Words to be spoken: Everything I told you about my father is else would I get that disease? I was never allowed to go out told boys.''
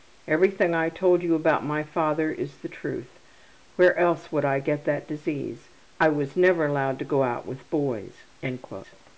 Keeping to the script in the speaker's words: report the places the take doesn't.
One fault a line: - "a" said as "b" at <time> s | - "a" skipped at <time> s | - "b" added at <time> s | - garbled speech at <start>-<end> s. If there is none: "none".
- "the truth Where" added at 2.6 s
- "told" said as "with" at 7.4 s